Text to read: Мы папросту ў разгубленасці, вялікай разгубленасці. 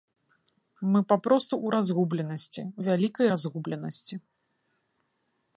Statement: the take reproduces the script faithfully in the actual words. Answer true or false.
true